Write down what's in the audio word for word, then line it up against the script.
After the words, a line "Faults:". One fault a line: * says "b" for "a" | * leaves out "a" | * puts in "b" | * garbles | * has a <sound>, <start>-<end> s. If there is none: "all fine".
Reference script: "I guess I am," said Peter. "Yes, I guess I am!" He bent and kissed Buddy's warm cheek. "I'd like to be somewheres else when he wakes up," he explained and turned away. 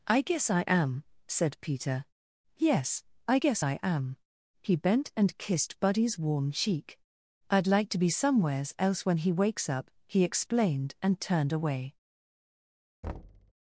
"I guess I am," said Peter. "Yes, I guess I am!" He bent and kissed Buddy's warm cheek. "I'd like to be somewheres else when he wakes up," he explained and turned away.
Faults:
* has a thud, 13.0-13.5 s